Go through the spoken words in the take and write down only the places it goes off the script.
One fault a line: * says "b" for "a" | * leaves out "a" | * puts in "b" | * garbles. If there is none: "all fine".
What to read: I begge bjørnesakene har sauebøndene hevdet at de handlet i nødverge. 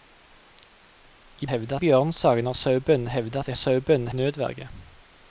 * says "hevdet" for "begge"
* says "sauebøndene" for "handlet"